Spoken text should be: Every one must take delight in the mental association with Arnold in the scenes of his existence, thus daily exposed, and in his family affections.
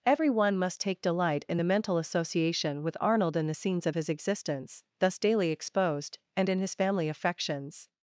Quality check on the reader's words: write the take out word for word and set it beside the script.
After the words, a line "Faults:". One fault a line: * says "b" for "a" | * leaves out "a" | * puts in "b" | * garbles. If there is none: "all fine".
Every one must take delight in the mental association with Arnold in the scenes of his existence, thus daily exposed, and in his family affections.
Faults:
all fine